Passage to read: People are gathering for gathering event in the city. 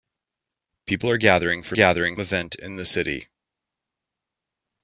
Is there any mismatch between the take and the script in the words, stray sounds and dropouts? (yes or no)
no